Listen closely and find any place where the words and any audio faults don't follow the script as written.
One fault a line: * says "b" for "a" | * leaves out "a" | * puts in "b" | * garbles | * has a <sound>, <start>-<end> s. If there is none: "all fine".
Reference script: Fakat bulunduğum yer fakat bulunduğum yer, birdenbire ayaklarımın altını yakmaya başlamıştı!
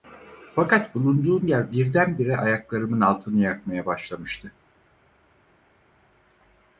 * leaves out "fakat bulunduğum yer"